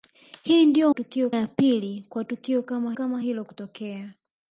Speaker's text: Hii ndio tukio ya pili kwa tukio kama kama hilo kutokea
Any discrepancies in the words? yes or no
no